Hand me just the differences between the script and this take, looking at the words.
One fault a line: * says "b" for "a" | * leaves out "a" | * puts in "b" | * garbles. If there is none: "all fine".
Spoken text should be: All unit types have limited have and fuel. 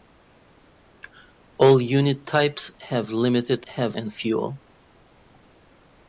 all fine